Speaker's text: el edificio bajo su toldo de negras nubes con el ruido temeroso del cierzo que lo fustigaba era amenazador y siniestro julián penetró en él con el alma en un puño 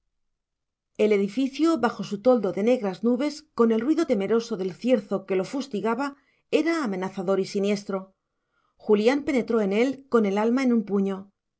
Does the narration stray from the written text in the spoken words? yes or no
no